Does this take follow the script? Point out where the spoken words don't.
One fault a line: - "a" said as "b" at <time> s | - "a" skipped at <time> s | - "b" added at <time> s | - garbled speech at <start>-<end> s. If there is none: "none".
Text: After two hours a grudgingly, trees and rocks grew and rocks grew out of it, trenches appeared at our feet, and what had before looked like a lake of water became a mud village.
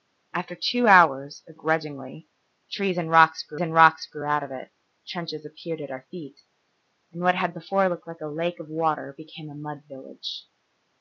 none